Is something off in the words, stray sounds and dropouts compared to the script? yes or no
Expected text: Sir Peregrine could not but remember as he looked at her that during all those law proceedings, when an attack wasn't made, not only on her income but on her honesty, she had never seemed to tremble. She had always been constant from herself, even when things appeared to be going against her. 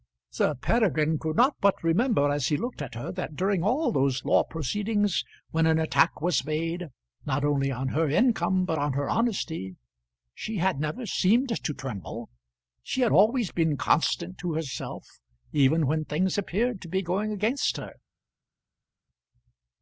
yes